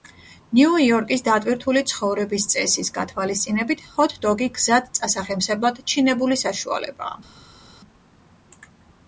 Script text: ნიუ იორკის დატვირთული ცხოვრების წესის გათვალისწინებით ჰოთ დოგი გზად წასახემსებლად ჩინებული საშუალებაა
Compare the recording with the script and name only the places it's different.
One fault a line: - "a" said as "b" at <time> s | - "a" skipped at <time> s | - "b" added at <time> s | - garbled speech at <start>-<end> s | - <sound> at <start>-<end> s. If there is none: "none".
none